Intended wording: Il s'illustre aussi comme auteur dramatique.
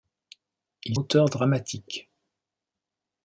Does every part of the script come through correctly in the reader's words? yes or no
no